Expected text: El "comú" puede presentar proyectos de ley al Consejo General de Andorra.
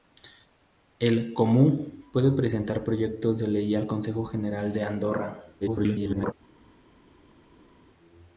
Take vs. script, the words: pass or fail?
fail